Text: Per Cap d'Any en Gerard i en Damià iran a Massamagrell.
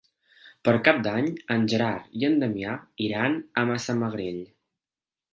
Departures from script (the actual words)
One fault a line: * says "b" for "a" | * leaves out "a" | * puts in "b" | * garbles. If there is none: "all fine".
all fine